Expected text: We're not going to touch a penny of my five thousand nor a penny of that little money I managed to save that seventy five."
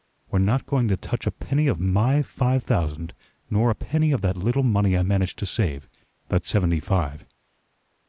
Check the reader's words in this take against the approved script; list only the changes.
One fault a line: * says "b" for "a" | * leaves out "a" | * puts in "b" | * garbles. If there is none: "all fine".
all fine